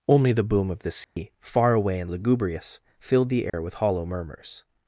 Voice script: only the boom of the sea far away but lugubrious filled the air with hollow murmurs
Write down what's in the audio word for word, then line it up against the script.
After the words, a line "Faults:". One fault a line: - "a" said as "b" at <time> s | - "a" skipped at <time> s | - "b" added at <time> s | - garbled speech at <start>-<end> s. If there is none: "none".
only the boom of the sea far away and lugubrious filled the air with hollow murmurs
Faults:
- "but" said as "and" at 2.0 s